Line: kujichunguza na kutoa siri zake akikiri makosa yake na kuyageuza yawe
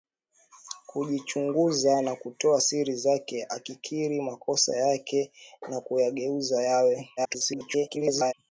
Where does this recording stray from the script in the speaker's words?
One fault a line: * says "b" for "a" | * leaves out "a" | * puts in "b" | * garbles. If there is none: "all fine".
* garbles